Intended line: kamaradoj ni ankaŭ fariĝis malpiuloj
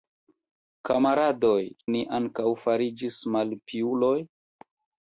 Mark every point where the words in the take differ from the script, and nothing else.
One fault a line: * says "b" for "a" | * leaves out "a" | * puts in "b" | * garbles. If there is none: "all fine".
all fine